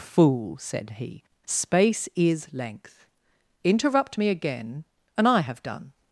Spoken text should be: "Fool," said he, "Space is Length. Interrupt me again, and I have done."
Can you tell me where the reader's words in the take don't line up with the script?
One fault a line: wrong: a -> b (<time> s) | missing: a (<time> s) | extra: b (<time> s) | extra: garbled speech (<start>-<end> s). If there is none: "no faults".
no faults